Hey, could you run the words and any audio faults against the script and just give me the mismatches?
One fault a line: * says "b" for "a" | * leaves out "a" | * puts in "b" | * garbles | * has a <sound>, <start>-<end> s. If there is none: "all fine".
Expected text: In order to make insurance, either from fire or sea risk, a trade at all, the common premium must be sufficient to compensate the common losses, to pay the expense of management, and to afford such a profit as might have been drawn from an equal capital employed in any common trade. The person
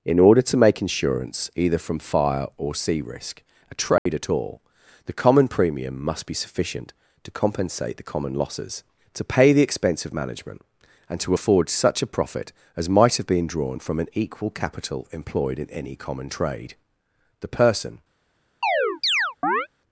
* has a dropout, 4.0-4.1 s
* has a chirp, 18.6-19.7 s